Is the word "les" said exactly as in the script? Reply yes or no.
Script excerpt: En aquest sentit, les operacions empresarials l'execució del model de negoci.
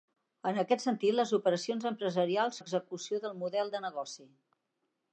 yes